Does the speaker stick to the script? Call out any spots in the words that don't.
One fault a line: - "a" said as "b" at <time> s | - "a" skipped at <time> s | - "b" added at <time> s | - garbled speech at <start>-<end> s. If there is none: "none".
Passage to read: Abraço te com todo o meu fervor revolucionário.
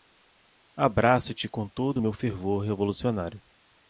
none